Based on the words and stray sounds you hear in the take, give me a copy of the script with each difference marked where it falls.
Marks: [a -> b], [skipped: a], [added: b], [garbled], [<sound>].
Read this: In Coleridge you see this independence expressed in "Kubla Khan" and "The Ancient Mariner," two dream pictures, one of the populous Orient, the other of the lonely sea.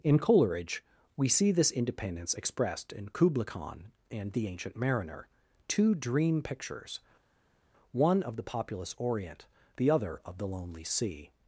In Coleridge [you -> we] see this independence expressed in "Kubla Khan" and "The Ancient Mariner," two dream pictures, one of the populous Orient, the other of the lonely sea.